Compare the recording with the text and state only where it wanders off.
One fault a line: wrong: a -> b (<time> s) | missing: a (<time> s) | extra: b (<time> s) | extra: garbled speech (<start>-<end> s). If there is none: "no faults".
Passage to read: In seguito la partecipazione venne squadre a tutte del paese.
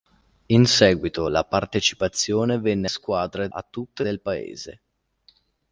no faults